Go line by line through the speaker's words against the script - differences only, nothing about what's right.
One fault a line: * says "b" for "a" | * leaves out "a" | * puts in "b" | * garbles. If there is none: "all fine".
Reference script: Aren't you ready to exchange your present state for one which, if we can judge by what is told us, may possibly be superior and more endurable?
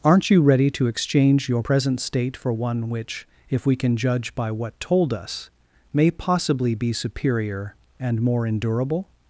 * leaves out "is"